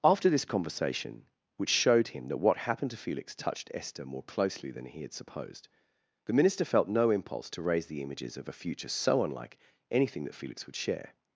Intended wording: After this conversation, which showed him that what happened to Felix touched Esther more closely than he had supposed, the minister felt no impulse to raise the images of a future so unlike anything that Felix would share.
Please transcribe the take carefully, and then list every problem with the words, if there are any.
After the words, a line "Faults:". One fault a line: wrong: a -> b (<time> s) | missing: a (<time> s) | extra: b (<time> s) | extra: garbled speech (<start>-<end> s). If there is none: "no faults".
After this conversation, which showed him that what happened to Felix touched Esther more closely than he had supposed, the minister felt no impulse to raise the images of a future so unlike anything that Felix would share.
Faults:
no faults